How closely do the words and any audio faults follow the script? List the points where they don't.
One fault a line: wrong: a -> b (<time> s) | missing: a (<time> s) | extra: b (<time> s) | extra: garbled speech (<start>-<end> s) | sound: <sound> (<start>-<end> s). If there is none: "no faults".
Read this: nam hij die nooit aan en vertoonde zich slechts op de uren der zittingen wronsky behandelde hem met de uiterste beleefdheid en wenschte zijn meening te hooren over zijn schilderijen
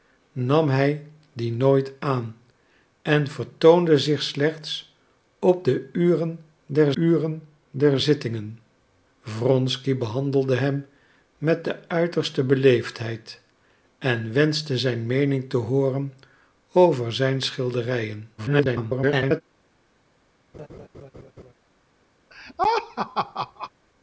extra: uren der (6.9 s)
extra: garbled speech (18.4-19.4 s)
sound: laugh (20.5-21.5 s)
sound: laugh (22.3-23.7 s)